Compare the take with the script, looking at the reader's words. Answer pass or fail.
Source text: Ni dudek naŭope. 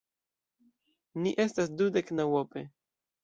fail